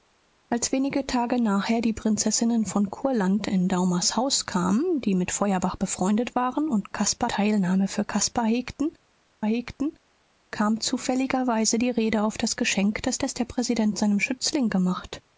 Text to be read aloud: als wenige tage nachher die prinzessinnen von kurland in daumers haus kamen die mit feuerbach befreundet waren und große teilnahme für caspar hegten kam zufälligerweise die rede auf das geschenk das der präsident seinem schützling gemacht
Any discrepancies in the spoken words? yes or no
yes